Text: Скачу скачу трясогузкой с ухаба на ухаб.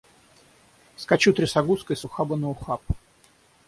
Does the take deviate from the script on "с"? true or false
false